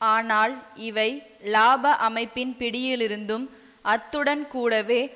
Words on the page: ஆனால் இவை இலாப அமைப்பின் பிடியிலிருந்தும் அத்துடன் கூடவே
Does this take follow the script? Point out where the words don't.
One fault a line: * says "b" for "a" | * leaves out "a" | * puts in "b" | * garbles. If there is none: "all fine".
all fine